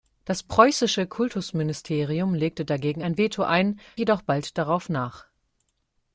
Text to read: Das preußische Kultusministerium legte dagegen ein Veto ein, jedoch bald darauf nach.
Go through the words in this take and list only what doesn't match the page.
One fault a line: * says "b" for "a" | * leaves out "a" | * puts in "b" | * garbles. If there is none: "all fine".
all fine